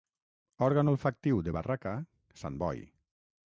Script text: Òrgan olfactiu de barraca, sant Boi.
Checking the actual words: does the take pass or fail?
pass